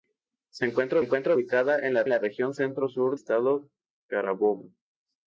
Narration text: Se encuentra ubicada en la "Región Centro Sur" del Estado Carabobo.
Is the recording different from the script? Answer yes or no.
yes